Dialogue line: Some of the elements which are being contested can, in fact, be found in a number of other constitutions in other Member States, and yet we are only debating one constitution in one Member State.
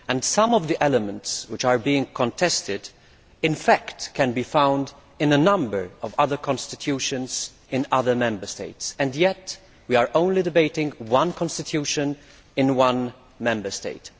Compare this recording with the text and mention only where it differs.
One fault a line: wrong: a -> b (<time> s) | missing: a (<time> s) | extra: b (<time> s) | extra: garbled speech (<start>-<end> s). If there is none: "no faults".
no faults